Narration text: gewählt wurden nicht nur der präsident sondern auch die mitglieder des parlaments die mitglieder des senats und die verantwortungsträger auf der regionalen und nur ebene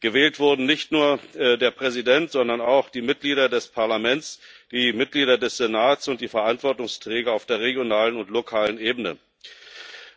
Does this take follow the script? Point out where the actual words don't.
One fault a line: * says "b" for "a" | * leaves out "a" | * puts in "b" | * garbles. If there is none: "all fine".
* says "lokalen" for "nur"